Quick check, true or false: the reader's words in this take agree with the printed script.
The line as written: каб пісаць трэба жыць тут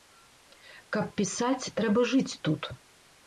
true